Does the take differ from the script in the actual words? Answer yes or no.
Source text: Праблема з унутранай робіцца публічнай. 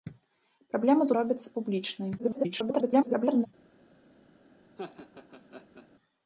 yes